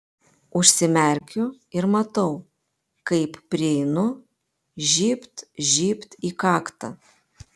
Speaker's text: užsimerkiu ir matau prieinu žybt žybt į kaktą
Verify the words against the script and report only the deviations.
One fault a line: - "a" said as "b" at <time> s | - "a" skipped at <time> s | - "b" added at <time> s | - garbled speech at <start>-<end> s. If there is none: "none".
- "kaip" added at 3.1 s